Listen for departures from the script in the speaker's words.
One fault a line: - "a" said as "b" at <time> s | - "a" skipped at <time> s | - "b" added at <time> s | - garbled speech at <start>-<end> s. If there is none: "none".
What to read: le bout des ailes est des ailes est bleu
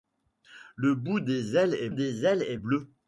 none